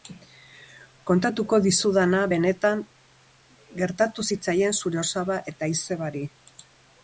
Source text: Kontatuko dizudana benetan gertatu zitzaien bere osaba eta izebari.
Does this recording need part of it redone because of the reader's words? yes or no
yes